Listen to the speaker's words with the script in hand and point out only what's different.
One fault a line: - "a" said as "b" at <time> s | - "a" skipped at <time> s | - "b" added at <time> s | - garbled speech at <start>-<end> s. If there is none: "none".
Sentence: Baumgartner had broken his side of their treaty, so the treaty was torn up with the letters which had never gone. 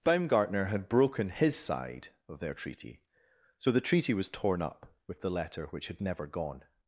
- "letters" said as "letter" at 5.3 s